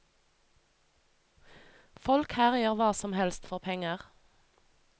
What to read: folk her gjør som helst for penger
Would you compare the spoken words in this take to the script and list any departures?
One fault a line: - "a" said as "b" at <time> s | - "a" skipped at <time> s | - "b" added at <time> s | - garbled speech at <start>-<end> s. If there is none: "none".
- "hva" added at 2.8 s